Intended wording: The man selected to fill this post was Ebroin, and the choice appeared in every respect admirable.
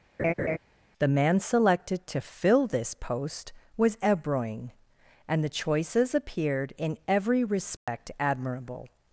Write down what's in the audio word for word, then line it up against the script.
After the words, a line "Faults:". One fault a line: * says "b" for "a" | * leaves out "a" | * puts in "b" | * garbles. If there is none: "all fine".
The man selected to fill this post was Ebroin, and the choices appeared in every respect admirable.
Faults:
* says "choices" for "choice"